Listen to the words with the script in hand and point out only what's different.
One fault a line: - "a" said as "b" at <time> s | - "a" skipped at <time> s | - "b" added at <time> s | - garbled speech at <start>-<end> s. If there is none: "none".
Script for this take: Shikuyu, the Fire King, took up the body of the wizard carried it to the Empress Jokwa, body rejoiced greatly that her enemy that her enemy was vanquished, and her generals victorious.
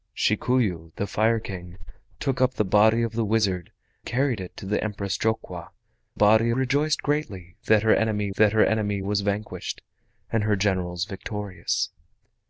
none